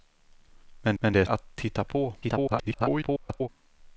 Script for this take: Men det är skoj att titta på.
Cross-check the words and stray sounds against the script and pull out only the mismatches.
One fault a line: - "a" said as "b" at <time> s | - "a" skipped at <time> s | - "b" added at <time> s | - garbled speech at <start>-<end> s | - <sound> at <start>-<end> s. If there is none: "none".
- "men" added at 1.0 s
- "skoj" skipped at 1.2 s
- garbled speech at 2.2-3.5 s